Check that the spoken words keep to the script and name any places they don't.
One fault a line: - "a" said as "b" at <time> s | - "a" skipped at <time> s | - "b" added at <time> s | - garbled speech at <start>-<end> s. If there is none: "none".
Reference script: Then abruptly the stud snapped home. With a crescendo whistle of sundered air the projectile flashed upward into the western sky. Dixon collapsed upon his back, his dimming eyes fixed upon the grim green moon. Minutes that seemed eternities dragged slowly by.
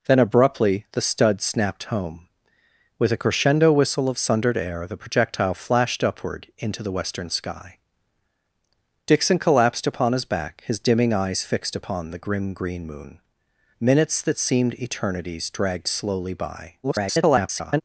- garbled speech at 16.8-17.8 s